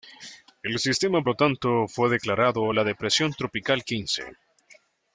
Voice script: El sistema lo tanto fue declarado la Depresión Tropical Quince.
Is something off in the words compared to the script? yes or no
no